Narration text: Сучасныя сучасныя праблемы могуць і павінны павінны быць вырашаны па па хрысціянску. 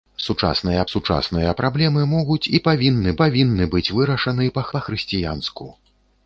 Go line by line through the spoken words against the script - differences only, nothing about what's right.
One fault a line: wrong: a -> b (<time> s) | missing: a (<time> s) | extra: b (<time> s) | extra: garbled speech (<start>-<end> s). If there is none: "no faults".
no faults